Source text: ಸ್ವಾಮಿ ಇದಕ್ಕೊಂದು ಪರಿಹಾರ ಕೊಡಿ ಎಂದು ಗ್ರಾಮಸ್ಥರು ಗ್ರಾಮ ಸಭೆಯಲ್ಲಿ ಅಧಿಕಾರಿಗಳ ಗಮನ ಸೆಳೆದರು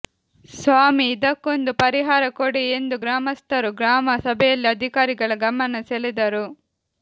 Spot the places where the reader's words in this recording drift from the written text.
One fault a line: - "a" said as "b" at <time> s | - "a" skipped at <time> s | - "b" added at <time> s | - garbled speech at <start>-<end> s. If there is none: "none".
none